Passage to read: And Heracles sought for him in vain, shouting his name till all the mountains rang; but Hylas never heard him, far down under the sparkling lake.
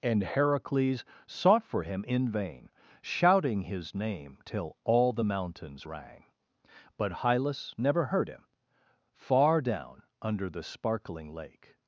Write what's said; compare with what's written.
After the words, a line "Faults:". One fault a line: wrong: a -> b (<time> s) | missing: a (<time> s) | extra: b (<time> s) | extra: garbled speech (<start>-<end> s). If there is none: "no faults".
And Heracles sought for him in vain, shouting his name till all the mountains rang; but Hylas never heard him, far down under the sparkling lake.
Faults:
no faults